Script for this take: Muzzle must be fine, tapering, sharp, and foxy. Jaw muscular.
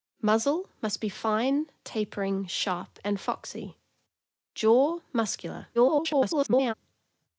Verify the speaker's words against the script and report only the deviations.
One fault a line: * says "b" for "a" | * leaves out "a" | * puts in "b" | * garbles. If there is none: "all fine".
* garbles